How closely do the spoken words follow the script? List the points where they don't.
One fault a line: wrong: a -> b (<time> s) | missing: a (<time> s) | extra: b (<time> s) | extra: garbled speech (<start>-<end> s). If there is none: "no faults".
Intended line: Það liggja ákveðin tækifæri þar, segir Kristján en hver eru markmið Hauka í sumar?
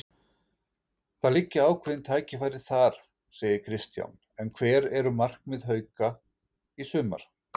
no faults